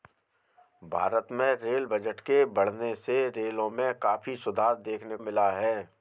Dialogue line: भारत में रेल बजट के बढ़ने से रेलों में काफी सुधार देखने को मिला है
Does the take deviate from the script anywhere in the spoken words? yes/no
yes